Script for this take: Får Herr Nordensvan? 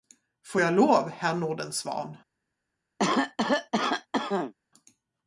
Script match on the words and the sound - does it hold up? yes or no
no